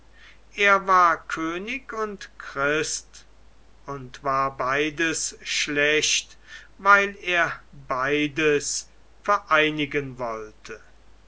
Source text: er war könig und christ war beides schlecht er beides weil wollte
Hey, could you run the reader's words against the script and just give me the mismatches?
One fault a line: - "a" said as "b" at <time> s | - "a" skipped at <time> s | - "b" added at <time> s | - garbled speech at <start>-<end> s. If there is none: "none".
- "und" added at 3.9 s
- "weil" added at 6.8 s
- "weil" said as "vereinigen" at 9.2 s